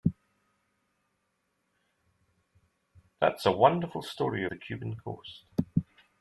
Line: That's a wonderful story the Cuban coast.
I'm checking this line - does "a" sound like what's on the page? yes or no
yes